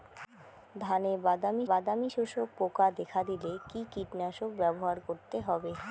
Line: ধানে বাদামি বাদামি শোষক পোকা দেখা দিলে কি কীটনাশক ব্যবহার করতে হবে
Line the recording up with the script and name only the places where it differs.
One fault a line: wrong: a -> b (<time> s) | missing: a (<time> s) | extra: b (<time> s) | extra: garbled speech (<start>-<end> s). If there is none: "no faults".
no faults